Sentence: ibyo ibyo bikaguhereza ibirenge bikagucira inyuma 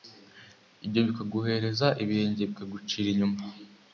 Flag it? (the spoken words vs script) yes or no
yes